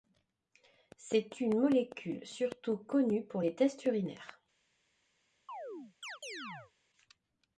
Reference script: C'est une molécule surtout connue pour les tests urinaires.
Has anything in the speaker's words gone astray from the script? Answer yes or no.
no